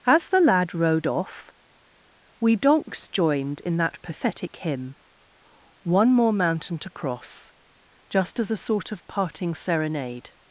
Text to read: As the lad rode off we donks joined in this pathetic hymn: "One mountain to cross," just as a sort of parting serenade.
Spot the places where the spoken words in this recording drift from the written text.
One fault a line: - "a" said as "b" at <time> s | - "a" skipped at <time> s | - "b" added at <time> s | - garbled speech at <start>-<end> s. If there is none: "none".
- "this" said as "that" at 3.8 s
- "more" added at 6.1 s